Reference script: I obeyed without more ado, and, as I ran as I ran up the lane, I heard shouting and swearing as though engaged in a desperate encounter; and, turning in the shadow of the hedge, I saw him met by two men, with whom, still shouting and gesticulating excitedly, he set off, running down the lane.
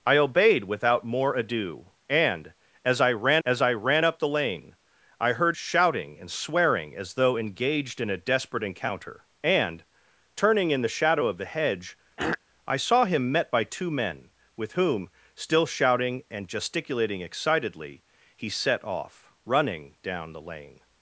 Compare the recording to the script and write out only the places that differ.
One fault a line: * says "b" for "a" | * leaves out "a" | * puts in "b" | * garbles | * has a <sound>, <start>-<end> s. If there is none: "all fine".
* has a throat clearing, 12.2-12.4 s